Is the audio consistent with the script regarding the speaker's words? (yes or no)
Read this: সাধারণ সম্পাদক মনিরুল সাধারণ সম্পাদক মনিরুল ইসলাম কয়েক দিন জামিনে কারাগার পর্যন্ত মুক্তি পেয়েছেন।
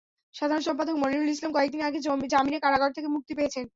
no